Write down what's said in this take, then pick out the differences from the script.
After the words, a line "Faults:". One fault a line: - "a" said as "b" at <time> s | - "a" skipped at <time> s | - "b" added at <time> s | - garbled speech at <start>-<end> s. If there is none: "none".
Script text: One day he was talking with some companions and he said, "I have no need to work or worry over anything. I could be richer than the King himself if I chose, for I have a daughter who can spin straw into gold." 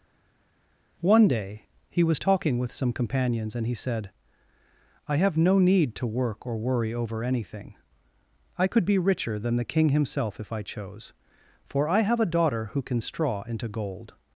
One day he was talking with some companions and he said, "I have no need to work or worry over anything. I could be richer than the King himself if I chose, for I have a daughter who can straw into gold."
Faults:
- "spin" skipped at 13.0 s